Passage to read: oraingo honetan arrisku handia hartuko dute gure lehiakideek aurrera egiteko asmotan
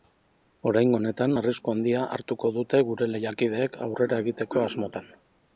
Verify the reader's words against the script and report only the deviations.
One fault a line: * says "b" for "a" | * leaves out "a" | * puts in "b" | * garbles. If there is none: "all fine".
all fine